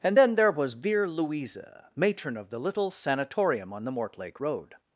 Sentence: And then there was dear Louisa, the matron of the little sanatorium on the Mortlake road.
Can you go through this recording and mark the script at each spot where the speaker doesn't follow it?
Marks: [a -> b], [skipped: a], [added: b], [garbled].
And then there was dear Louisa, [skipped: the] matron of the little sanatorium on the Mortlake road.